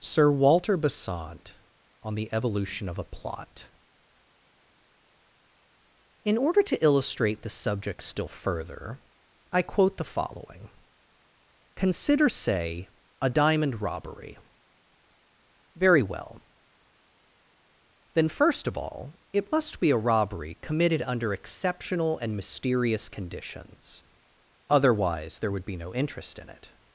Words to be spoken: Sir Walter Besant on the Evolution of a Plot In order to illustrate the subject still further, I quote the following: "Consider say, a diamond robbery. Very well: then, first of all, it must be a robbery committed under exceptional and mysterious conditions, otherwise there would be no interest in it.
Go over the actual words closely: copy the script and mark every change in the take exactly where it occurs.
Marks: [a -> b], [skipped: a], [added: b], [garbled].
Sir Walter Besant on the Evolution of a Plot In order to illustrate the subject still further, I quote the following: "Consider say, a diamond robbery. Very well: then, first of all, it must be a robbery committed under exceptional and mysterious conditions, otherwise there would be no interest in it.